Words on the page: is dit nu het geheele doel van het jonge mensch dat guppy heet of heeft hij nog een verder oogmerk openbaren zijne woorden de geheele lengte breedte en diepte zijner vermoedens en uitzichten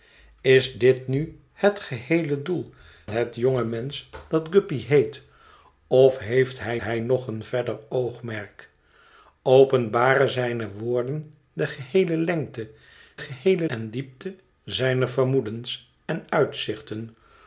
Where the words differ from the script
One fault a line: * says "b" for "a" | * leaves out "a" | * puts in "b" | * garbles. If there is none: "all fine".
* leaves out "van"
* puts in "hij"
* says "geheele" for "breedte"